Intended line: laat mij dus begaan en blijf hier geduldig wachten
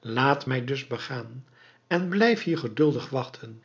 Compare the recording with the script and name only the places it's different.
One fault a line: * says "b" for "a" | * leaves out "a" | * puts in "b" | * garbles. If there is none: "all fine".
all fine